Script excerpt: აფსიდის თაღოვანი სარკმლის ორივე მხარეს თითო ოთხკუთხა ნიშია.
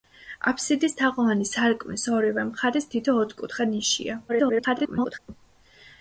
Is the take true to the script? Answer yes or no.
no